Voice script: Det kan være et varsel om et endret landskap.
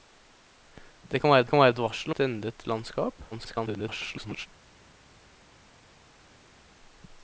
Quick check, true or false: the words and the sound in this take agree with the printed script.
false